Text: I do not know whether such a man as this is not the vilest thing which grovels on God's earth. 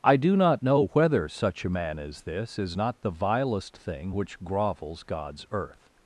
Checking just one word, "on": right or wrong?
wrong